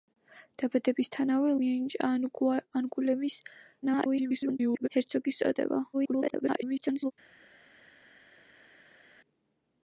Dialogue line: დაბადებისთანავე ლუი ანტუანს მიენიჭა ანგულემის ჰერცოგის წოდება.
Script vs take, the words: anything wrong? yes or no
yes